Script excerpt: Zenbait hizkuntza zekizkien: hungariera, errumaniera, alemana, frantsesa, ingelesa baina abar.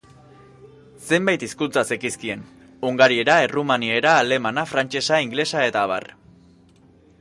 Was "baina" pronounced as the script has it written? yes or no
no